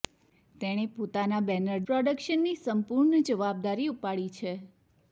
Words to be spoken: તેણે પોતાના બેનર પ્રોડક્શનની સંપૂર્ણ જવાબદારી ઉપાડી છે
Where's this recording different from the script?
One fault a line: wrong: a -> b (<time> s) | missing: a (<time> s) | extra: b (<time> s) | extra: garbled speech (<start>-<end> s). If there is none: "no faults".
no faults